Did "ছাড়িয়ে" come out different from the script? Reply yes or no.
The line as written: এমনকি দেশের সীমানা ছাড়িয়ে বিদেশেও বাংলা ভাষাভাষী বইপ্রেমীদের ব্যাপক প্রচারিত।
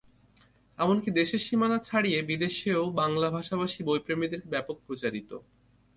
no